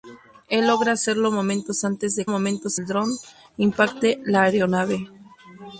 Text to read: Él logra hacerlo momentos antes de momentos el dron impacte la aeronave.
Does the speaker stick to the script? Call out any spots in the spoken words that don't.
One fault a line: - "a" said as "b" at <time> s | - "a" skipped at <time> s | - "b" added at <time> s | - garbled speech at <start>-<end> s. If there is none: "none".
none